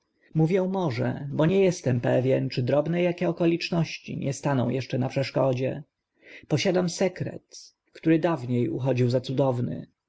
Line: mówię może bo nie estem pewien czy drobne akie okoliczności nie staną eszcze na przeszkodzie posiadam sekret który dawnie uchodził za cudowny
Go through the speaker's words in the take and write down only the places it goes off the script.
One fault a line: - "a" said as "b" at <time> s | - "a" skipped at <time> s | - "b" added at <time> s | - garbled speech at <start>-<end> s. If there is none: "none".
none